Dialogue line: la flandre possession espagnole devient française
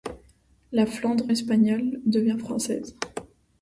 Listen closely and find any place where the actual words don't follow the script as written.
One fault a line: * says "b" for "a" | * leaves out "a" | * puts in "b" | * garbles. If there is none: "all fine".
* leaves out "possession"